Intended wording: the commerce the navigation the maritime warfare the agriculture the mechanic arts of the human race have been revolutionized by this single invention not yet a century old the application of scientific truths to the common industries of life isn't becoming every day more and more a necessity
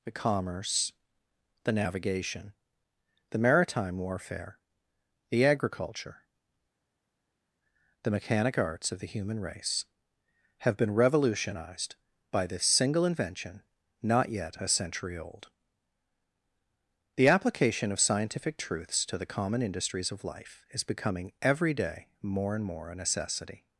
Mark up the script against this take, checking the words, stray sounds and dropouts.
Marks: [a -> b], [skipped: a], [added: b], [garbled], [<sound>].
the commerce the navigation the maritime warfare the agriculture the mechanic arts of the human race have been revolutionized by this single invention not yet a century old the application of scientific truths to the common industries of life [isn't -> is] becoming every day more and more a necessity